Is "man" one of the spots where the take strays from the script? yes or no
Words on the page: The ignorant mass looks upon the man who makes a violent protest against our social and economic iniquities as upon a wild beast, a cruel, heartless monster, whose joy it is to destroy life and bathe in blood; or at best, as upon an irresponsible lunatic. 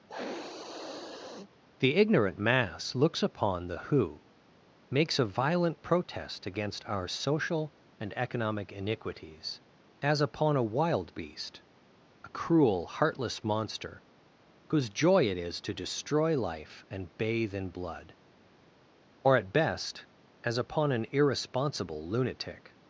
yes